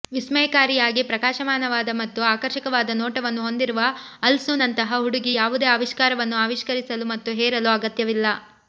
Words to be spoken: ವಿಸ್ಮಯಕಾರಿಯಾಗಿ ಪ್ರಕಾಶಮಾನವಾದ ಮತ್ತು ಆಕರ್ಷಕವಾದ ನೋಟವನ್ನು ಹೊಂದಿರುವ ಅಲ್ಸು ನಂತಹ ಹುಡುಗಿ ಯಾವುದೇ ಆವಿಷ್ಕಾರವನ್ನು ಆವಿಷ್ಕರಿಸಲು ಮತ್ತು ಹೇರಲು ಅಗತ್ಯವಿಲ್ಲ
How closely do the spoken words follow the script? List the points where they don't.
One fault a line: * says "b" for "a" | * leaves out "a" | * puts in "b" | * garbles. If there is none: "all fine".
all fine